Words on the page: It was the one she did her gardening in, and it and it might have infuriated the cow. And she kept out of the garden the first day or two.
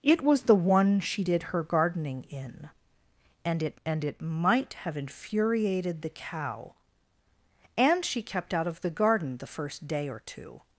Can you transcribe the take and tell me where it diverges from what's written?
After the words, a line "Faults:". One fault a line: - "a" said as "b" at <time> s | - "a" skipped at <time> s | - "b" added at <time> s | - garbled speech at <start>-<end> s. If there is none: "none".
It was the one she did her gardening in, and it and it might have infuriated the cow. And she kept out of the garden the first day or two.
Faults:
none